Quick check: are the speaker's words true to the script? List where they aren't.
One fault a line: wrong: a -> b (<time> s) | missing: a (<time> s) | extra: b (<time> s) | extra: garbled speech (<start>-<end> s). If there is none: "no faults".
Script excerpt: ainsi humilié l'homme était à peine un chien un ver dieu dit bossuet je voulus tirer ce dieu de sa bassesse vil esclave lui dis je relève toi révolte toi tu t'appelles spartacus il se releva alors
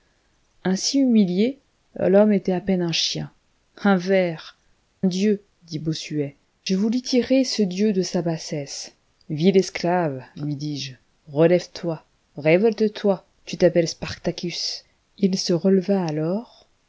no faults